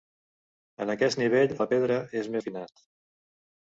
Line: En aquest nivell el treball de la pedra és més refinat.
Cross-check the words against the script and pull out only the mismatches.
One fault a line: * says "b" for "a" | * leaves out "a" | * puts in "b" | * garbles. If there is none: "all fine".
* leaves out "el treball"
* leaves out "més"